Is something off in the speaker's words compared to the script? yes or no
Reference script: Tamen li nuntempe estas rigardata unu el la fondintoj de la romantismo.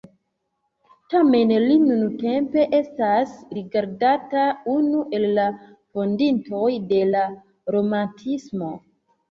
no